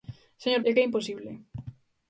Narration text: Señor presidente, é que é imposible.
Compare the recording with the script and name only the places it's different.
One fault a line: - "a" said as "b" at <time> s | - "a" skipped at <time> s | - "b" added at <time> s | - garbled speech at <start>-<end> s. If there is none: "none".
- "presidente" skipped at 0.6 s